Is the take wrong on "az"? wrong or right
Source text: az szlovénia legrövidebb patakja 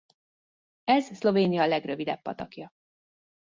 wrong